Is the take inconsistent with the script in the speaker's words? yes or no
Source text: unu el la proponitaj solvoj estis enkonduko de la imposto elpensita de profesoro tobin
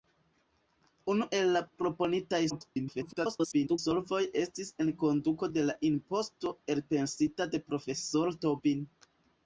yes